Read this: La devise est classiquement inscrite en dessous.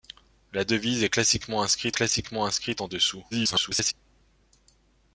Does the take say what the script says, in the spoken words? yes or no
no